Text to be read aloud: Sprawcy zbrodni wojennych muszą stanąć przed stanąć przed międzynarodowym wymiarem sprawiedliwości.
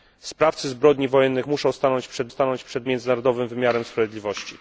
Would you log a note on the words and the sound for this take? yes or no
no